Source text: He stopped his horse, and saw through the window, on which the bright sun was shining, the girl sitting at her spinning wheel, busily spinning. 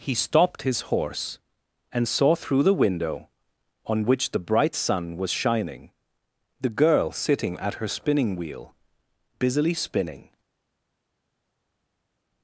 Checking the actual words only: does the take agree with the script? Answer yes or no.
yes